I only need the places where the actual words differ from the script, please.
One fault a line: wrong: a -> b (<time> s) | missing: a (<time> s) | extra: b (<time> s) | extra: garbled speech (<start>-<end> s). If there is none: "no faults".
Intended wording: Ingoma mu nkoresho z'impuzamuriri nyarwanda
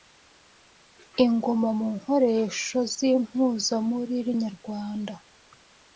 no faults